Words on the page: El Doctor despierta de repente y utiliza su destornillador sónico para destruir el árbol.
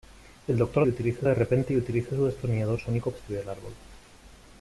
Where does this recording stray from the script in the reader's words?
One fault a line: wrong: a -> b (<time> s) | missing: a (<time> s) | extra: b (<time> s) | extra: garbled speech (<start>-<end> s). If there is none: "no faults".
wrong: despierta -> utiliza (0.9 s)
missing: para (3.1 s)